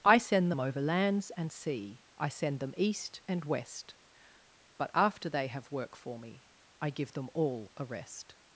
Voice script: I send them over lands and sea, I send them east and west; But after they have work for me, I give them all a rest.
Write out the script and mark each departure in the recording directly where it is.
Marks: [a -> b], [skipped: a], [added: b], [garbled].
I send them over lands and sea, I send them east and west; But after they have work for me, I give them all a rest.